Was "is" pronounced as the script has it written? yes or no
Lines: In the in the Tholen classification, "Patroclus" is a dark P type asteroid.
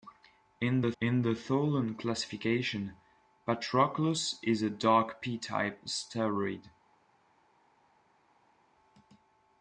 yes